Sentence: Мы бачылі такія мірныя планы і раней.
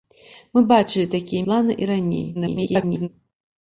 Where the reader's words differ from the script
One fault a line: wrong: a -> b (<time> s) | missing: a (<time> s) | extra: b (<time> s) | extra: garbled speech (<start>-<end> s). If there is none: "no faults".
missing: мірныя (1.4 s)
extra: garbled speech (2.3-3.1 s)